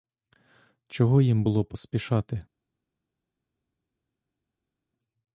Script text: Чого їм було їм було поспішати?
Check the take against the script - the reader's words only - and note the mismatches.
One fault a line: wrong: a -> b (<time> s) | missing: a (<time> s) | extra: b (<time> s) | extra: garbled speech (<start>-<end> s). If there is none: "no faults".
missing: їм було (1.6 s)